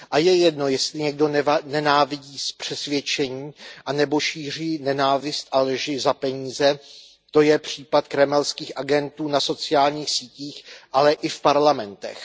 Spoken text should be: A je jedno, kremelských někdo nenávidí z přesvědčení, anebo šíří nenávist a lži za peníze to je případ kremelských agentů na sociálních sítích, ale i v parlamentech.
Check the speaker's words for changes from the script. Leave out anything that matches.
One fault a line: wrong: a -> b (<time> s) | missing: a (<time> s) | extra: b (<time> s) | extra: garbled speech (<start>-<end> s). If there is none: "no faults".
wrong: kremelských -> jestli (0.7 s)